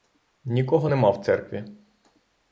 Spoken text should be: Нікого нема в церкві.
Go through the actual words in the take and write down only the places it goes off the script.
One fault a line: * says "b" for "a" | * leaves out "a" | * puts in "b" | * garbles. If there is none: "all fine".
all fine